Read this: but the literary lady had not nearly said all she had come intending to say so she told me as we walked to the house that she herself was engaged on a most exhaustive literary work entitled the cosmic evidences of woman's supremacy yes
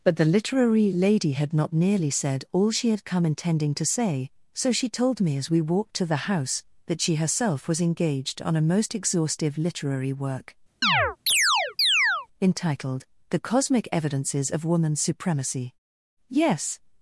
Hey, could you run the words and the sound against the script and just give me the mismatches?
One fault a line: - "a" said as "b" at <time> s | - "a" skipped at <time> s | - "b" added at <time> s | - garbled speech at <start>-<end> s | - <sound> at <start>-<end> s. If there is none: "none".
- chirp at 10.8-12.3 s